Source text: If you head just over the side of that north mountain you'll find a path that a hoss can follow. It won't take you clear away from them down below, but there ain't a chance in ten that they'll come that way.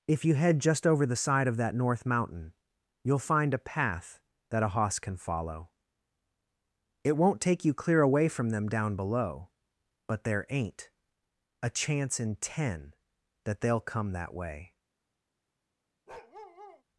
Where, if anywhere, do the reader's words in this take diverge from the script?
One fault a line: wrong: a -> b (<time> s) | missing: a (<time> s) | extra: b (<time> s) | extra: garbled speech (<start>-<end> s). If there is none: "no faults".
no faults